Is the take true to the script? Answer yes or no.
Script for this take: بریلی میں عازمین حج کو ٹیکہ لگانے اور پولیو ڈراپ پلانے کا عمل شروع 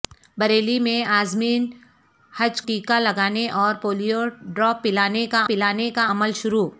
no